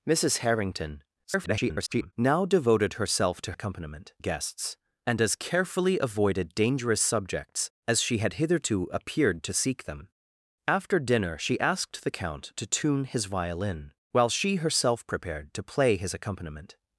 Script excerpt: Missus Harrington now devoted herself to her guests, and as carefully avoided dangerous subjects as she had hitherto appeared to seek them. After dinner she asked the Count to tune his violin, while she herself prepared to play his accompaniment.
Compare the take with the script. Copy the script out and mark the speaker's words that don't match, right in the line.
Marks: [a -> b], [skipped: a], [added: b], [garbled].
Missus Harrington [garbled] now devoted herself to [her -> accompaniment] guests, and as carefully avoided dangerous subjects as she had hitherto appeared to seek them. After dinner she asked the Count to tune his violin, while she herself prepared to play his accompaniment.